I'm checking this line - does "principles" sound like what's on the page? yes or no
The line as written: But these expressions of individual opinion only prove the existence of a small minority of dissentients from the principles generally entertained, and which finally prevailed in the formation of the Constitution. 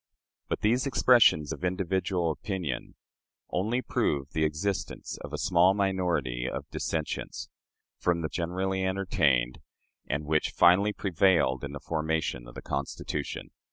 no